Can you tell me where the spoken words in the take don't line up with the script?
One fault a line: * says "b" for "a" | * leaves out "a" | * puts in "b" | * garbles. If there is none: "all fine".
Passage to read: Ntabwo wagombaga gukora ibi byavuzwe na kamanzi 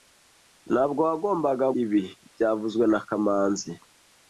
* leaves out "gukora"